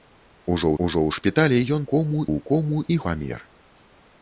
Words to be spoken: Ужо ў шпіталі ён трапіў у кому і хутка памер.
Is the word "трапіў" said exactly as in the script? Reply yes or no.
no